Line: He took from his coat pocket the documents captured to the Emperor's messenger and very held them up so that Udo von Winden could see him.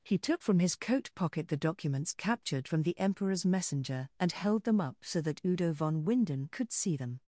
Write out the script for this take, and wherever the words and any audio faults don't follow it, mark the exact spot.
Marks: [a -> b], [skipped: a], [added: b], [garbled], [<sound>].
He took from his coat pocket the documents captured [to -> from] the Emperor's messenger and [skipped: very] held them up so that Udo von Winden could see [him. -> them]